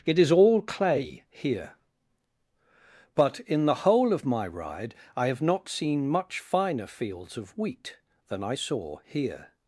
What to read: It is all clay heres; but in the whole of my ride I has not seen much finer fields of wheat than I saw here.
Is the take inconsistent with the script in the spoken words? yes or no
yes